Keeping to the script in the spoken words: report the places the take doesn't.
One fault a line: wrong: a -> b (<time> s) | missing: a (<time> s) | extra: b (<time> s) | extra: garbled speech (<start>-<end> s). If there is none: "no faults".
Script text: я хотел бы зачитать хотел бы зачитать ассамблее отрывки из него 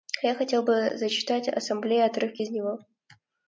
missing: хотел бы зачитать (1.5 s)